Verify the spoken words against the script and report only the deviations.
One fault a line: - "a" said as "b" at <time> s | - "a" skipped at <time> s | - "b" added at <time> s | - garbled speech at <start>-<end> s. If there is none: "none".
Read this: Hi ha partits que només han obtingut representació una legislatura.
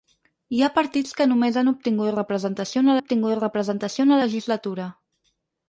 - "obtingut representació una" added at 3.0 s